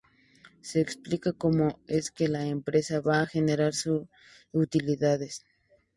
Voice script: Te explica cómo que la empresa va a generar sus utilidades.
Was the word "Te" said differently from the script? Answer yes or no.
yes